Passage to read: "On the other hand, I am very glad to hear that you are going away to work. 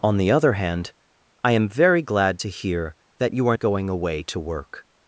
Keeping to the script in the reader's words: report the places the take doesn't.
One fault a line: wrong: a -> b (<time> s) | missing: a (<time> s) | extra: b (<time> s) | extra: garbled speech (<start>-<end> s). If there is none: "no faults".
no faults